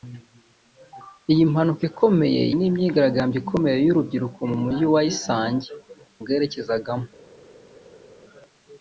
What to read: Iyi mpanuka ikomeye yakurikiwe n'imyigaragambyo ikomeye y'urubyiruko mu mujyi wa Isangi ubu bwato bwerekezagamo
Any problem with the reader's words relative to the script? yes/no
yes